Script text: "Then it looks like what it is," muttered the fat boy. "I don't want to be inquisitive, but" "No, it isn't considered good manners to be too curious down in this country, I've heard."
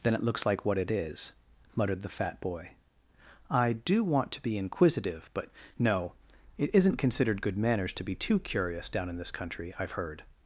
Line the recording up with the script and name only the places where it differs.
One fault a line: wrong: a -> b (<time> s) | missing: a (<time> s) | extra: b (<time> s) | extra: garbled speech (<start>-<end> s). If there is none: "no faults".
wrong: don't -> do (3.7 s)